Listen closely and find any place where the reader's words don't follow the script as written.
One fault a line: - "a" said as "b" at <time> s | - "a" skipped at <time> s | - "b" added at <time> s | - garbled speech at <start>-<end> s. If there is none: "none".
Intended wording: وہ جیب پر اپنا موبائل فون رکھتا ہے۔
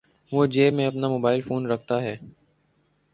- "پر" said as "میں" at 0.7 s